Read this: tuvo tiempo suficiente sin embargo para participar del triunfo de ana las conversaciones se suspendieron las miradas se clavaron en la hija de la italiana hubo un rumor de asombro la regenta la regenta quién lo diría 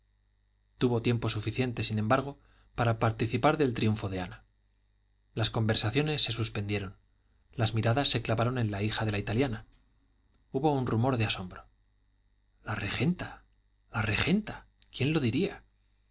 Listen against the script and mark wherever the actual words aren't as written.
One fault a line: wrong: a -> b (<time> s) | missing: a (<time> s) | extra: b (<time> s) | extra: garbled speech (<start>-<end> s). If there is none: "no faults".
no faults